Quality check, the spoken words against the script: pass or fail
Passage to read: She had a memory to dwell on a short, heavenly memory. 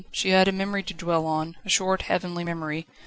pass